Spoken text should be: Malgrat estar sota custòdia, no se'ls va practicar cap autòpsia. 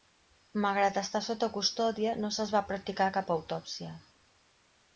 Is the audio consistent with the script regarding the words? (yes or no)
yes